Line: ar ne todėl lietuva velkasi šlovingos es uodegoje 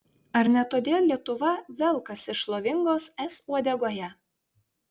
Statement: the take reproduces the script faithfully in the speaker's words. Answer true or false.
true